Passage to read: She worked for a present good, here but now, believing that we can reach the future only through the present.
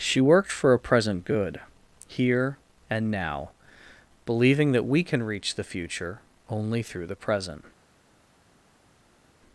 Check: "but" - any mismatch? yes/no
yes